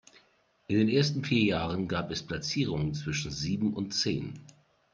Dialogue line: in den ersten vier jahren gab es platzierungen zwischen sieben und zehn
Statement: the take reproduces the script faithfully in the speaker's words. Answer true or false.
true